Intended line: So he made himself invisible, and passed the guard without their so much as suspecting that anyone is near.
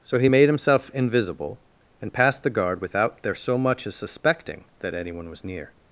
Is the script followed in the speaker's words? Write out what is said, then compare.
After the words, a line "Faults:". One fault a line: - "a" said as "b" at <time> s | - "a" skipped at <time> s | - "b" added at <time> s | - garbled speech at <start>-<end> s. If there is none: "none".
So he made himself invisible, and passed the guard without their so much as suspecting that anyone was near.
Faults:
- "is" said as "was" at 5.3 s